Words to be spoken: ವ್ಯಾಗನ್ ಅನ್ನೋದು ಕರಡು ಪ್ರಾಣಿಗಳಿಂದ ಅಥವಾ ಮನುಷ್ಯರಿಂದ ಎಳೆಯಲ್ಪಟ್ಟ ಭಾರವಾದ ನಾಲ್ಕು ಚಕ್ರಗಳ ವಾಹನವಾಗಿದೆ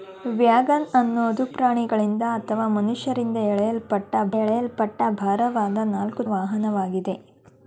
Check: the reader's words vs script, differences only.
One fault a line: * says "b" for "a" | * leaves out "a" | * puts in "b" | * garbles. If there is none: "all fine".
* leaves out "ಕರಡು"
* puts in "ಎಳೆಯಲ್ಪಟ್ಟ"
* leaves out "ಚಕ್ರಗಳ"